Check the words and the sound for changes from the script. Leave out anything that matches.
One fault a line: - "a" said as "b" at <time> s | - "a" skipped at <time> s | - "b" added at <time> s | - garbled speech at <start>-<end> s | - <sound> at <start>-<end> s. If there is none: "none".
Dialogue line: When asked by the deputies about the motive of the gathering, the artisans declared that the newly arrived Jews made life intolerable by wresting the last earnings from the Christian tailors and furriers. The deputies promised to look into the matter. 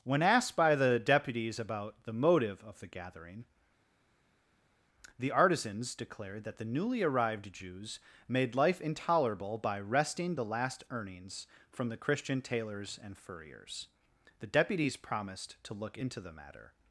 none